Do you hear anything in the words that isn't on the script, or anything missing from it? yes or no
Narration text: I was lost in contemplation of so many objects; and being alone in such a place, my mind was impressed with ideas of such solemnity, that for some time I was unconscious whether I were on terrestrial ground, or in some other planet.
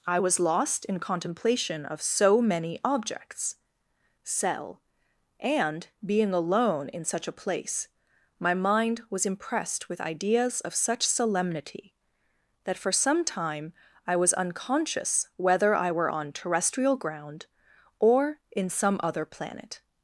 yes